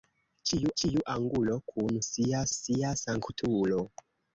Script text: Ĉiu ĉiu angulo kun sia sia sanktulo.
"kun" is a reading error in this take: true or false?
false